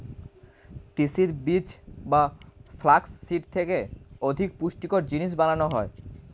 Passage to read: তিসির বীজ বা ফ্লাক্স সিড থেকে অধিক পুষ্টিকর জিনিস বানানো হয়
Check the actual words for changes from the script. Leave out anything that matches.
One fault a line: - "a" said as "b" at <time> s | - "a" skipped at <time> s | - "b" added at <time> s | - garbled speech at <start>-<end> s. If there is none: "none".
none